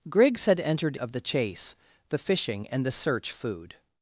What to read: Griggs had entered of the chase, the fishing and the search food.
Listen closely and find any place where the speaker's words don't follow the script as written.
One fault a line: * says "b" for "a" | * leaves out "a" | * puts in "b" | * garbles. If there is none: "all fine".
all fine